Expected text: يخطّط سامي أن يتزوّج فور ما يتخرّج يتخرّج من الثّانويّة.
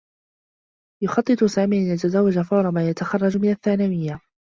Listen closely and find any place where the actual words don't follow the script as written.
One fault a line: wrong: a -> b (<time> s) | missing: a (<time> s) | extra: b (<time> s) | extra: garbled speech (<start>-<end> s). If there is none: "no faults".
missing: يتخرّج (3.4 s)